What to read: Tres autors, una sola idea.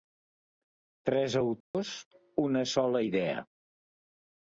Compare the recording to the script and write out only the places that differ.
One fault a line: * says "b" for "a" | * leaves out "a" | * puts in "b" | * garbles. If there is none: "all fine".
all fine